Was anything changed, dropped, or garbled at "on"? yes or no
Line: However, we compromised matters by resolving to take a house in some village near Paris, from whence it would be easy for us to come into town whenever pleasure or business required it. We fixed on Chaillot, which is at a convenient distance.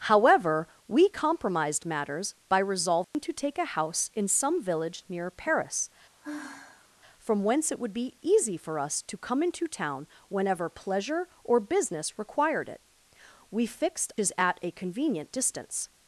yes